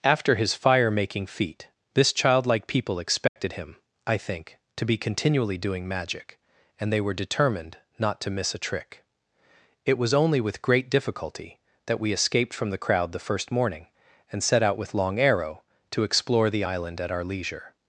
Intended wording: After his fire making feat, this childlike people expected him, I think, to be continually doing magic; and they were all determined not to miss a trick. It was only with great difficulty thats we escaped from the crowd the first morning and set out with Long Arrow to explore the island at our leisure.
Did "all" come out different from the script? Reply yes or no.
yes